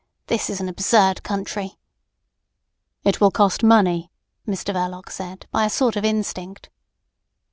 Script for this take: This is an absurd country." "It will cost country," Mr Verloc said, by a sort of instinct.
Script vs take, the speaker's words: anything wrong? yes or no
yes